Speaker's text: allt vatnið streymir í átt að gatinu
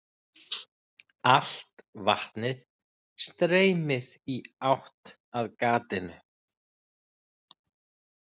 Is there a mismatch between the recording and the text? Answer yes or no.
no